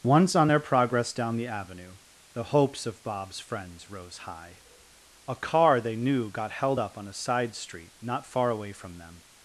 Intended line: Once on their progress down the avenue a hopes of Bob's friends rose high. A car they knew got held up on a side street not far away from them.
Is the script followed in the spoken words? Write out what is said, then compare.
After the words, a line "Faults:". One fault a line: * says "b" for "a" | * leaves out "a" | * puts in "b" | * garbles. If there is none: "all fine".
Once on their progress down the avenue the hopes of Bob's friends rose high. A car they knew got held up on a side street not far away from them.
Faults:
* says "the" for "a"